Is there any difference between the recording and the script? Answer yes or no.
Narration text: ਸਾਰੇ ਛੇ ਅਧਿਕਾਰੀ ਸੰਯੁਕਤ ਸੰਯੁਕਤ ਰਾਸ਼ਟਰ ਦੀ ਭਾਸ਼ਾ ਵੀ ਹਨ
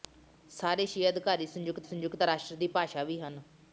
no